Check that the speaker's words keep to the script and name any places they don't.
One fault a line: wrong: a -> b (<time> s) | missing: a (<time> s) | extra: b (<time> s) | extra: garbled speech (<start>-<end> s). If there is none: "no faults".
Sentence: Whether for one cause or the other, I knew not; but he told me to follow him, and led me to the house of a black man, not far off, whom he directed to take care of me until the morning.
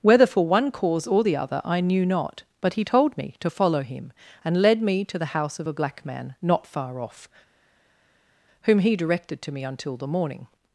missing: take care of (9.5 s)